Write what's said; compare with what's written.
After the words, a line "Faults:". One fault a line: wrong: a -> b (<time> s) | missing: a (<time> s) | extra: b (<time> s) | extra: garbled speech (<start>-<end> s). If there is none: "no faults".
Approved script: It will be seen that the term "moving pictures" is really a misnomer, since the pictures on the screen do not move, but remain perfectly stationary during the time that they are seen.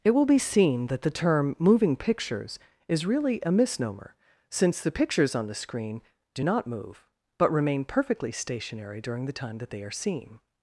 It will be seen that the term "moving pictures" is really a misnomer, since the pictures on the screen do not move, but remain perfectly stationary during the time that they are seen.
Faults:
no faults